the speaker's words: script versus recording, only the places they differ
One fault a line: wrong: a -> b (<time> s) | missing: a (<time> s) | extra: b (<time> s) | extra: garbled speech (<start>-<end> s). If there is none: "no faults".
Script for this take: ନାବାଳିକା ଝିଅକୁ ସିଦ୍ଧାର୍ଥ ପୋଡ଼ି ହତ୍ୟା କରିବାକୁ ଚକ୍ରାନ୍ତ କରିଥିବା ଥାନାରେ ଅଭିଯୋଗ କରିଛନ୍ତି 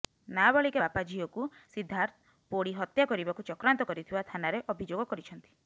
extra: ବାପା (0.8 s)